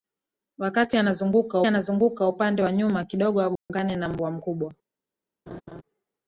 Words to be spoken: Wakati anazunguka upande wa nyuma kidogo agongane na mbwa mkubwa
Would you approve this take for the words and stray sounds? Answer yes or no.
no